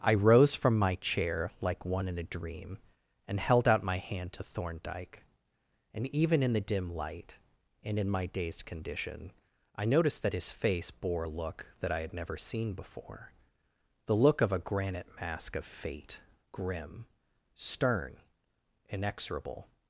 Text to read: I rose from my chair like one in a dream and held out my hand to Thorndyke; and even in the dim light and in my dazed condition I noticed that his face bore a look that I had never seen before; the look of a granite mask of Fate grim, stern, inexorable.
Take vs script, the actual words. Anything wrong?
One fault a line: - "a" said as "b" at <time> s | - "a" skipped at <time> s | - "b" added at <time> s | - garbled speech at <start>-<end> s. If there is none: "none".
none